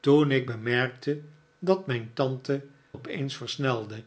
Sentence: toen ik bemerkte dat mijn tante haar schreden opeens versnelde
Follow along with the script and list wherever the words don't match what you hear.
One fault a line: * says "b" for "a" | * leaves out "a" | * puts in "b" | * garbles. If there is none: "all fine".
* leaves out "haar schreden"